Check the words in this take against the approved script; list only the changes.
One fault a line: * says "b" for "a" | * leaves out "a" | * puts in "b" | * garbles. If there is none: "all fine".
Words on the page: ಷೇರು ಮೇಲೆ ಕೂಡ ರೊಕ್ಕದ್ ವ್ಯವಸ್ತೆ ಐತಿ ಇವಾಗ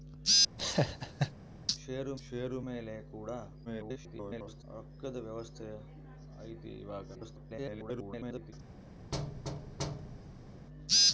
* puts in "ಷೇರು"
* garbles
* garbles